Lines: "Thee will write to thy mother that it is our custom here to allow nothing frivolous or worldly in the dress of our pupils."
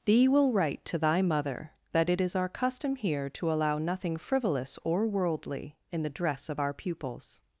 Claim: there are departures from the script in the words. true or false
false